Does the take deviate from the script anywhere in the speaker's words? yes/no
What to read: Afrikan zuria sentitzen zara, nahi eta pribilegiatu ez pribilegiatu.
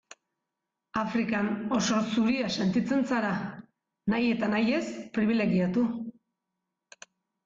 yes